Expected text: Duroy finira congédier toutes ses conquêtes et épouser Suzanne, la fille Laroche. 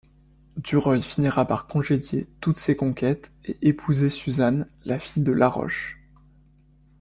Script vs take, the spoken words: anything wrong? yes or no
yes